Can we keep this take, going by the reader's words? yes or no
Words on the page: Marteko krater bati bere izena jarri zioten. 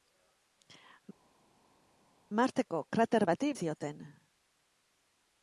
no